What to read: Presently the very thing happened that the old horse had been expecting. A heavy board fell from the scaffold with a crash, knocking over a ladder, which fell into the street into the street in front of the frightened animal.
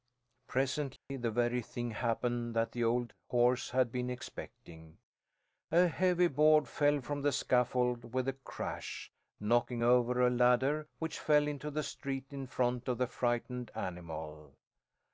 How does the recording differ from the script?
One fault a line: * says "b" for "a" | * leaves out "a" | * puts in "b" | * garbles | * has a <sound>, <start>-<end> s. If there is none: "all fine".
* has a dropout, 1.0-1.1 s
* leaves out "into the street"